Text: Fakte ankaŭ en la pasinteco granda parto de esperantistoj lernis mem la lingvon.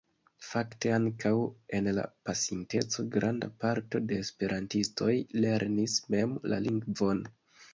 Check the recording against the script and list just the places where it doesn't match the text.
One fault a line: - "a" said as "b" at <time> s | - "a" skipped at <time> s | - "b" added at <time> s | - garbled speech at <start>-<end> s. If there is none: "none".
none